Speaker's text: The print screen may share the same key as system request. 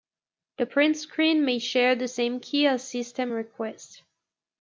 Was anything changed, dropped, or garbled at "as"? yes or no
no